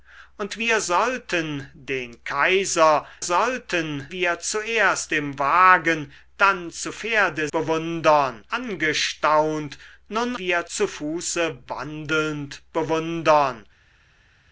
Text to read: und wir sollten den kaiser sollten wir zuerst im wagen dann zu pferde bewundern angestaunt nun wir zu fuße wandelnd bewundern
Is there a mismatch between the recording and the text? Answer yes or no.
no